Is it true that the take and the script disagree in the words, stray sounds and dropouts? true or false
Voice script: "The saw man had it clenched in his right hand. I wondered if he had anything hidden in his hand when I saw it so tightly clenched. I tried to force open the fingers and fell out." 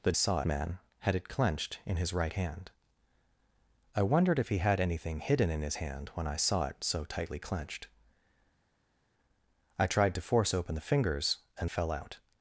false